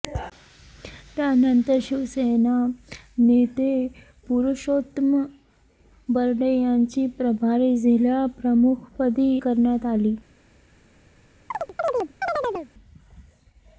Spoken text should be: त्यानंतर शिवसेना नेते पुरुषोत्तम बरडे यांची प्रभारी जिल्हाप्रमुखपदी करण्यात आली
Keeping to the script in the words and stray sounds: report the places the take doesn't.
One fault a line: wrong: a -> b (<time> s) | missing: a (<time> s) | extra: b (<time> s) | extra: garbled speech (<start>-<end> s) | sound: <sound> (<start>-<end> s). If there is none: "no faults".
sound: chirp (11.5-12.7 s)